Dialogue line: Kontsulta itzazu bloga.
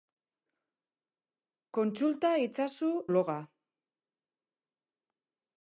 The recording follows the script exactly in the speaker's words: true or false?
true